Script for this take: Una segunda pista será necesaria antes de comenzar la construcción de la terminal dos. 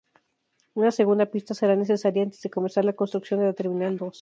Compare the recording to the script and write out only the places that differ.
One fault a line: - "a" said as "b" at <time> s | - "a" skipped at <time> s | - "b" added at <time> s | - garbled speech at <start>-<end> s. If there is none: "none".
none